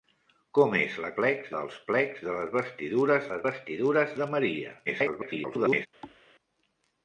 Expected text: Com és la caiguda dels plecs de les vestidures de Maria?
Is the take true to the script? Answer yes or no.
no